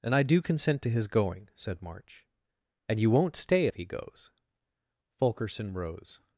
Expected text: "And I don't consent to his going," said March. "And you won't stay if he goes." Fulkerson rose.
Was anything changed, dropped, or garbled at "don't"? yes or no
yes